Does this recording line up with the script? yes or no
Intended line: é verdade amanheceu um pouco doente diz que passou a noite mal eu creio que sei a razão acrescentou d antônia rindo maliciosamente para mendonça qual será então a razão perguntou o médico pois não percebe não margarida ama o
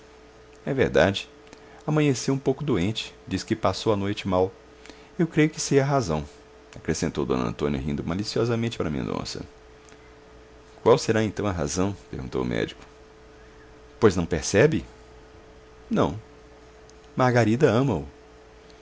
yes